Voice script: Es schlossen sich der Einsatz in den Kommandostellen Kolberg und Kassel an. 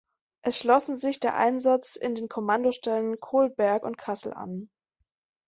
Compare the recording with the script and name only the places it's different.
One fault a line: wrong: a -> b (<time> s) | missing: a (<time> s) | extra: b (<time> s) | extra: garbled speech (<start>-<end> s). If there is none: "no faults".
no faults